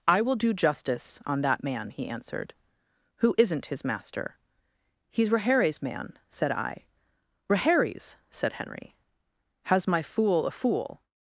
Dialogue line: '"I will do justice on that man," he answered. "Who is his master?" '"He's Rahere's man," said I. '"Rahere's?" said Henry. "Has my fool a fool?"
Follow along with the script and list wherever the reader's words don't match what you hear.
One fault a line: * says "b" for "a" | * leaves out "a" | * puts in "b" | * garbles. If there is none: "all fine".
* says "isn't" for "is"